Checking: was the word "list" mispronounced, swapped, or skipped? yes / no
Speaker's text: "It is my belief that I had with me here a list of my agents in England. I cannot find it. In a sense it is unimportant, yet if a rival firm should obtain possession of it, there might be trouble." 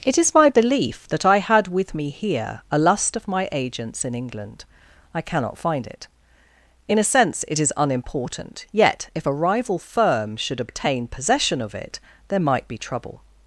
yes